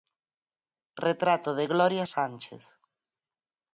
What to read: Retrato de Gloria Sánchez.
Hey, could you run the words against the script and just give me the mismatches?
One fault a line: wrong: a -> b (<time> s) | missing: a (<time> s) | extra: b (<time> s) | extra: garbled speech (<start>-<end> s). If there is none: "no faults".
no faults